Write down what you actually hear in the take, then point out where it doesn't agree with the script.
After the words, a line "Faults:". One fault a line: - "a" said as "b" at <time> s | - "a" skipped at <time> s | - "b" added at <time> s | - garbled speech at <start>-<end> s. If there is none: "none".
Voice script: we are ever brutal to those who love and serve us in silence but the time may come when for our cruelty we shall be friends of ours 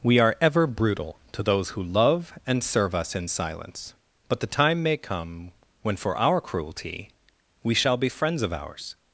we are ever brutal to those who love and serve us in silence but the time may come when for our cruelty we shall be friends of ours
Faults:
none